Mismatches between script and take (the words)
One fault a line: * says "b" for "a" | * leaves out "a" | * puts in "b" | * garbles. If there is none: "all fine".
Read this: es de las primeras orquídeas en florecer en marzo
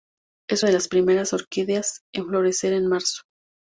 all fine